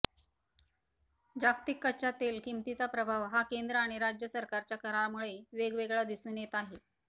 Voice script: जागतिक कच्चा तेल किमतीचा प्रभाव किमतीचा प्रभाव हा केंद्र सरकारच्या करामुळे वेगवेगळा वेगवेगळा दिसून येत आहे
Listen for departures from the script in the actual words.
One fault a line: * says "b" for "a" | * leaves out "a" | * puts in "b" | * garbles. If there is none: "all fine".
* says "हा केंद्र आणि राज्य" for "किमतीचा प्रभाव हा केंद्र"
* leaves out "वेगवेगळा"